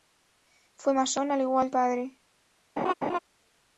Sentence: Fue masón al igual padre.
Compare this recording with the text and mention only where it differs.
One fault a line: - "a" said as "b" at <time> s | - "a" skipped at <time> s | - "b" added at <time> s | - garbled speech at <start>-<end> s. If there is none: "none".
none